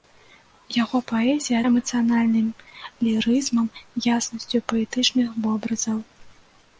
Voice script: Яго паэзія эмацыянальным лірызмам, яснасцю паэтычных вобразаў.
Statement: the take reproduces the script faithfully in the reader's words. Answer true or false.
true